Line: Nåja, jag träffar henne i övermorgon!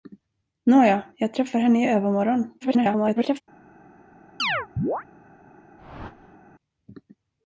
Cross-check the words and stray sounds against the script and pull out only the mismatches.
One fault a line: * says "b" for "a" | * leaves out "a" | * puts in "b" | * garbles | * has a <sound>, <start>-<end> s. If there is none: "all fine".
* garbles
* has a chirp, 4.4-5.0 s
* has a whoosh, 5.8-6.4 s